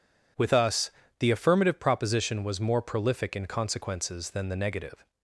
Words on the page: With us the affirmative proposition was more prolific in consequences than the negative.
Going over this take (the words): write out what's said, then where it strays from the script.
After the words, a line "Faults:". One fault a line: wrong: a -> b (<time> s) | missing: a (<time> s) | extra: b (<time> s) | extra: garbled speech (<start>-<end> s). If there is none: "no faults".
With us the affirmative proposition was more prolific in consequences than the negative.
Faults:
no faults